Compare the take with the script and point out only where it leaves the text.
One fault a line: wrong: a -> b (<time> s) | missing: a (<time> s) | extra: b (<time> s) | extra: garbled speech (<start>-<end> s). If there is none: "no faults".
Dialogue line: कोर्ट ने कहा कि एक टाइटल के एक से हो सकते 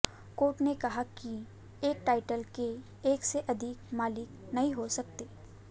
extra: अधिक मालिक नहीं (3.5 s)